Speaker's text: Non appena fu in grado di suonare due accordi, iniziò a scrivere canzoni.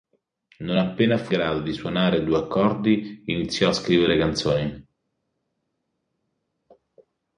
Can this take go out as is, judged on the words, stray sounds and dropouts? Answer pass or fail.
fail